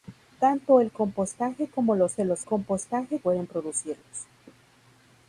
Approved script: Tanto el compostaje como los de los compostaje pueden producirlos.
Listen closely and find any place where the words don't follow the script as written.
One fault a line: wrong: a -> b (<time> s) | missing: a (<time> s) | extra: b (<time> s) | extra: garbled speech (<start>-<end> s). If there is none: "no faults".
no faults